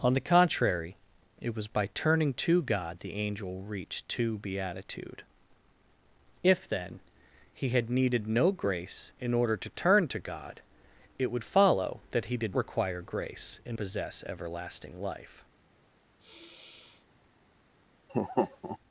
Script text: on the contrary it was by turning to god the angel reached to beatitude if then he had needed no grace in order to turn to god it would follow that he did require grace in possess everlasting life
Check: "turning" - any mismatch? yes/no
no